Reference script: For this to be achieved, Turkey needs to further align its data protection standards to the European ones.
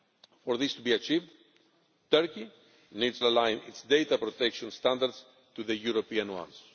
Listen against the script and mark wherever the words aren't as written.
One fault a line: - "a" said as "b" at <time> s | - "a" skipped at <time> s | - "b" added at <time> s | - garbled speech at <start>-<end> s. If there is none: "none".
- "to further" skipped at 3.2 s